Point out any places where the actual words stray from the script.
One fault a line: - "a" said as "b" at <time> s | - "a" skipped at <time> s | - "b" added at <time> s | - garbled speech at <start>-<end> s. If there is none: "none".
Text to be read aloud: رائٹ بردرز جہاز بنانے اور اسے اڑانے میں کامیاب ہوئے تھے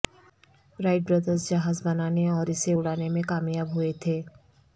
none